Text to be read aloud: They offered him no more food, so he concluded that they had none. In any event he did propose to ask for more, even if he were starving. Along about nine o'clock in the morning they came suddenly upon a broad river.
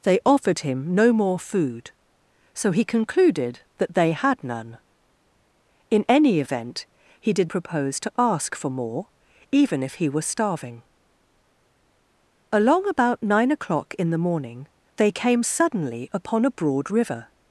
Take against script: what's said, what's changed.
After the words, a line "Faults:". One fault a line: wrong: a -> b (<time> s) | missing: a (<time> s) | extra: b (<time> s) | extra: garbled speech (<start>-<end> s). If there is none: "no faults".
They offered him no more food, so he concluded that they had none. In any event he did propose to ask for more, even if he were starving. Along about nine o'clock in the morning they came suddenly upon a broad river.
Faults:
no faults